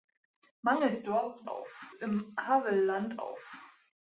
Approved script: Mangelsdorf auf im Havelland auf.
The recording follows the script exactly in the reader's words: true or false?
true